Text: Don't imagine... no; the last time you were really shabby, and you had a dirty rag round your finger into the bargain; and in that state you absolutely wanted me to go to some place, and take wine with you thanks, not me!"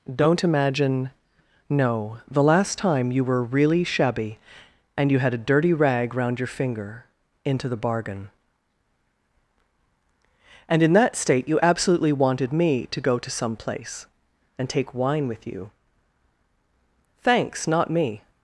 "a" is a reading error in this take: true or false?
false